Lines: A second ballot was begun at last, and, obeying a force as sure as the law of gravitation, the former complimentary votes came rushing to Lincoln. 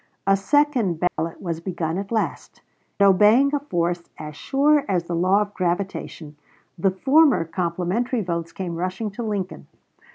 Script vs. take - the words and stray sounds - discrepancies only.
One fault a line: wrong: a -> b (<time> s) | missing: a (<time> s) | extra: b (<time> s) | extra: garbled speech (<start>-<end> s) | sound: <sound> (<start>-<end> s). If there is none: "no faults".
sound: dropout (1.1-1.2 s)
missing: and (2.6 s)